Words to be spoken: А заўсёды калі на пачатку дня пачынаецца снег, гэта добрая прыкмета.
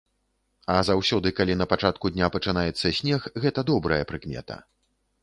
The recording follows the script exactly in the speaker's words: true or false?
true